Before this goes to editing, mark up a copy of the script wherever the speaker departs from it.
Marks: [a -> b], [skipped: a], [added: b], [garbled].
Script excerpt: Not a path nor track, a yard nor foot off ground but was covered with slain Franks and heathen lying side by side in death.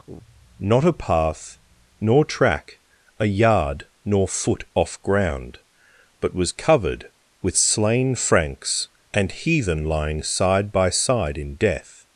Not a path nor track, a yard nor foot off ground but was covered with slain Franks and heathen lying side by side in death.